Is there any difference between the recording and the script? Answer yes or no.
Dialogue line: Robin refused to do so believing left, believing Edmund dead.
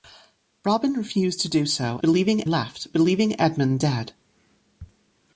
no